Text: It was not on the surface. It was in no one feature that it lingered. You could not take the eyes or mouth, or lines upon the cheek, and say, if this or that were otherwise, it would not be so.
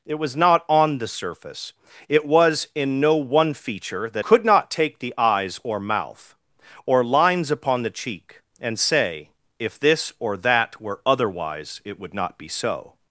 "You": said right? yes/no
no